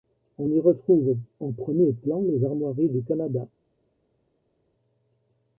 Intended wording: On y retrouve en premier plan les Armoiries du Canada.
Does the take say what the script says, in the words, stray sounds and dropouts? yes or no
yes